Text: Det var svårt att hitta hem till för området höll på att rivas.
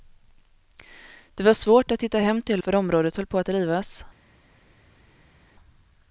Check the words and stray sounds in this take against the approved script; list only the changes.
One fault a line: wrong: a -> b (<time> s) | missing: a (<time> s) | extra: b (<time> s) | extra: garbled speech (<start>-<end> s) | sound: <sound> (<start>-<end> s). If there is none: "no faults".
no faults